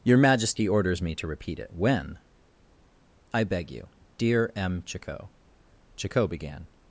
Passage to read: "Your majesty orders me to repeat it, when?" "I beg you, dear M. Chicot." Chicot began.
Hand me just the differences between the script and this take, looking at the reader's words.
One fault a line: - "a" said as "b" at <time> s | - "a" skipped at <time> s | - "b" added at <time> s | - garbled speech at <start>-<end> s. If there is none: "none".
none